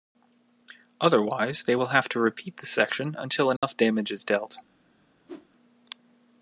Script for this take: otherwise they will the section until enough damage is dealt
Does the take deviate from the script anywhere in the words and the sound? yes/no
yes